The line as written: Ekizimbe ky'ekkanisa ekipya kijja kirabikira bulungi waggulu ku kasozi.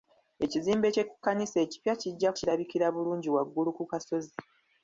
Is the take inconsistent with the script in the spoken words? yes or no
no